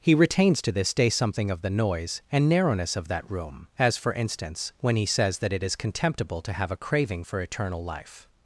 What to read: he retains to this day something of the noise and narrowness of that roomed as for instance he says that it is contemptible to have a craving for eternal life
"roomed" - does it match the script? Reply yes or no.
no